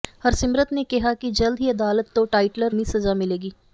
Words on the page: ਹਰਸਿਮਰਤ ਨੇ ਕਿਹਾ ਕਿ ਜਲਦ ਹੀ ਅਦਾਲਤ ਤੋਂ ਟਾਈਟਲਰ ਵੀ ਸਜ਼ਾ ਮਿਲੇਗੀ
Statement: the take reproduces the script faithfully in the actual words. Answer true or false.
true